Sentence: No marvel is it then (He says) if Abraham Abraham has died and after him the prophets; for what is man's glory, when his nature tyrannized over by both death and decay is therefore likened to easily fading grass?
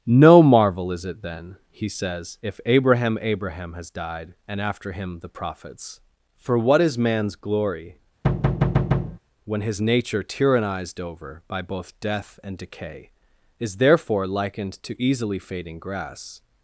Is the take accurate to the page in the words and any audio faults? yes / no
no